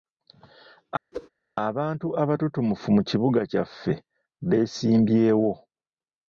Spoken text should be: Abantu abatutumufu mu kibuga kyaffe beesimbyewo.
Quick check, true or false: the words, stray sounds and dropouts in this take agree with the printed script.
false